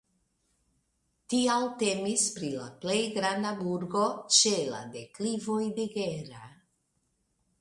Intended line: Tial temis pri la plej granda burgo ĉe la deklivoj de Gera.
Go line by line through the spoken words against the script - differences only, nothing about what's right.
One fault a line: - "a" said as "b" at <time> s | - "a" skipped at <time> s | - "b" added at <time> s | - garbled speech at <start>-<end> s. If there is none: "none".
none